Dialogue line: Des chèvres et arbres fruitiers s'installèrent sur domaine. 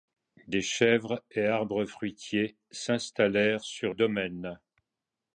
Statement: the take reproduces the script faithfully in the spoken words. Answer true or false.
true